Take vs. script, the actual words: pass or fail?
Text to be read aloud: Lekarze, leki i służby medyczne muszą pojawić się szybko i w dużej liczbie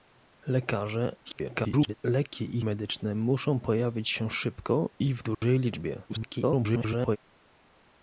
fail